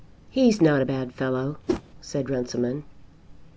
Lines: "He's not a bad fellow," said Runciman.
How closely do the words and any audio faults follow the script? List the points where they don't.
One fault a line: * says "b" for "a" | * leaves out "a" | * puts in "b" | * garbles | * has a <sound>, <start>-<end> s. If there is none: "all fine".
* has a whoosh, 1.7-1.8 s